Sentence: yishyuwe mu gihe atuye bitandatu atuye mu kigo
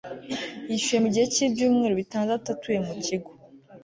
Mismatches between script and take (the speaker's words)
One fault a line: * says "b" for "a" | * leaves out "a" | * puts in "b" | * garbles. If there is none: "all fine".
* says "cy'ibyumweru" for "atuye"